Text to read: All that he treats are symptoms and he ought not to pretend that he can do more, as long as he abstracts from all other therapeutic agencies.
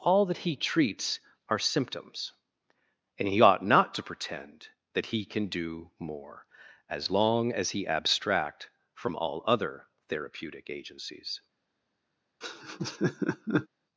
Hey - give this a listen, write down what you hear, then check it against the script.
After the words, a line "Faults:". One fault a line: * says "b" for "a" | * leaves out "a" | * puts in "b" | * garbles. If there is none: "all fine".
All that he treats are symptoms and he ought not to pretend that he can do more, as long as he abstract from all other therapeutic agencies.
Faults:
* says "abstract" for "abstracts"